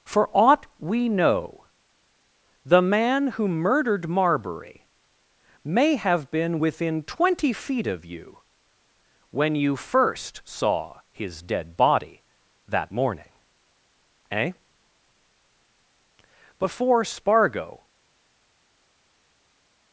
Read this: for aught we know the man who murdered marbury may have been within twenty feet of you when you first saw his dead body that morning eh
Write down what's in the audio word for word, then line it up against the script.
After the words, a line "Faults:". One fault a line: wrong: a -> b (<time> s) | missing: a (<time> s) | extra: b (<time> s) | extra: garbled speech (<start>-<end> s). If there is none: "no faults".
for aught we know the man who murdered marbury may have been within twenty feet of you when you first saw his dead body that morning eh before spargo
Faults:
extra: before spargo (16.6 s)